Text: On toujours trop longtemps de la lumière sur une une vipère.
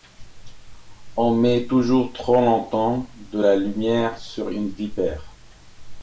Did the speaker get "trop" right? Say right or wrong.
right